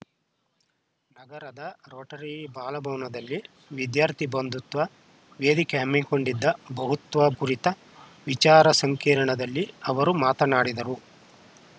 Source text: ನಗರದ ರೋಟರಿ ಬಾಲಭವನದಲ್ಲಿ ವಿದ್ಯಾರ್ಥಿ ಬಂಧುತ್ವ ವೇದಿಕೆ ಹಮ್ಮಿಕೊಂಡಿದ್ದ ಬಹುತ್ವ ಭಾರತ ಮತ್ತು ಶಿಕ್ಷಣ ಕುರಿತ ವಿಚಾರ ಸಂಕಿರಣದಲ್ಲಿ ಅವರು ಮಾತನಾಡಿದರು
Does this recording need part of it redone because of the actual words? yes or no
yes